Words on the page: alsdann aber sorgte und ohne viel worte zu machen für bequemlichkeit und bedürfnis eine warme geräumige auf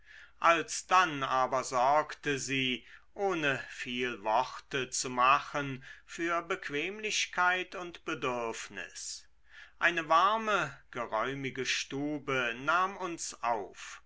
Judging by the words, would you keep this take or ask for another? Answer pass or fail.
fail